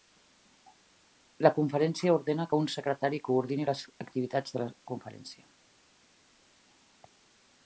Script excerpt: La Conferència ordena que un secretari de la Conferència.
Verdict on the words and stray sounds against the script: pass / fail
fail